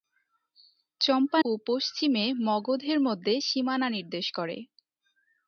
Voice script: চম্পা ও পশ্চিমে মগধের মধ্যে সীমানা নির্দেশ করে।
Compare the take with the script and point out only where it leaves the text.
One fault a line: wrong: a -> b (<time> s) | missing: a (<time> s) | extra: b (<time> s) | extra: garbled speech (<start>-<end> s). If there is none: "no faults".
no faults